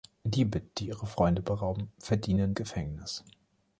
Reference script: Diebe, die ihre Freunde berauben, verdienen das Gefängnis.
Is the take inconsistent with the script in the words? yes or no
yes